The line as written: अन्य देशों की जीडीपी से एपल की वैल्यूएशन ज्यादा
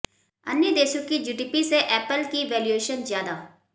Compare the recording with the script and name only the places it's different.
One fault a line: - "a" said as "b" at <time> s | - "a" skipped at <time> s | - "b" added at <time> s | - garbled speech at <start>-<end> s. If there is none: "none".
none